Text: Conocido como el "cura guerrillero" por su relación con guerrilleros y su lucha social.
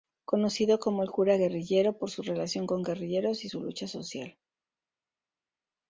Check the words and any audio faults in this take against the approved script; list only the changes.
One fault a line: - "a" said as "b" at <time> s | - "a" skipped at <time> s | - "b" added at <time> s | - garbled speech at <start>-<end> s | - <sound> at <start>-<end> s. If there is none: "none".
none